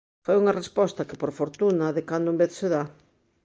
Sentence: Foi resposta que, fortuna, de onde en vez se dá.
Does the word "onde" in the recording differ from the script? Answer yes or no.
yes